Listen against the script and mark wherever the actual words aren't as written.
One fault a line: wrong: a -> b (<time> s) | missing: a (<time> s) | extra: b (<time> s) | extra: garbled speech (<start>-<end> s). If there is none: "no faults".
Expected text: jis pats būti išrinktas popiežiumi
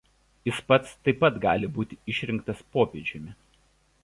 extra: taip pat gali (1.1 s)